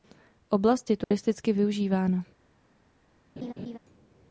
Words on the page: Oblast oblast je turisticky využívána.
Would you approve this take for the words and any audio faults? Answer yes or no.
no